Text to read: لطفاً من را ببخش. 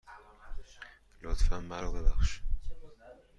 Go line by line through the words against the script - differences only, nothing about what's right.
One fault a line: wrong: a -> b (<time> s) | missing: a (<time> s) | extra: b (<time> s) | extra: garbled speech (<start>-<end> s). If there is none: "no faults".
no faults